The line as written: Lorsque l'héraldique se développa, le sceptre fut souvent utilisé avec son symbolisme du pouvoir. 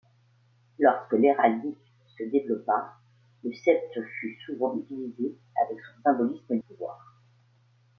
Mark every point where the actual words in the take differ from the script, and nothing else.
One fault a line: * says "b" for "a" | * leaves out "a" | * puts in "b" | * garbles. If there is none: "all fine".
* leaves out "du"